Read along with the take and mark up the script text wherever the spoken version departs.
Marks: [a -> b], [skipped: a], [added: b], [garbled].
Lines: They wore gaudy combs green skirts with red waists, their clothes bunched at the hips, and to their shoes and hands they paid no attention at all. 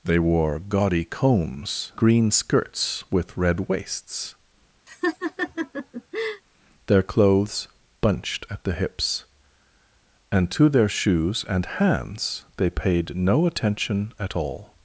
They wore gaudy combs green skirts with red waists, their clothes bunched at the hips, and to their shoes and hands they paid no attention at all.